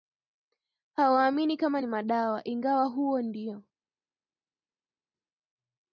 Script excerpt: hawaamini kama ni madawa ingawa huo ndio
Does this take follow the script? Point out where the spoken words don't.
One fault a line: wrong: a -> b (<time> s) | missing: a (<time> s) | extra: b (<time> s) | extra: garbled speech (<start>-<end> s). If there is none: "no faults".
no faults